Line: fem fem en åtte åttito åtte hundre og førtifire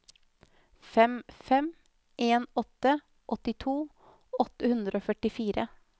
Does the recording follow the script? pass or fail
pass